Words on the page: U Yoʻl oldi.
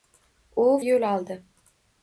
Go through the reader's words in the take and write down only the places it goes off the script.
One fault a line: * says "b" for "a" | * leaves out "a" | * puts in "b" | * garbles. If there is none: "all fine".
all fine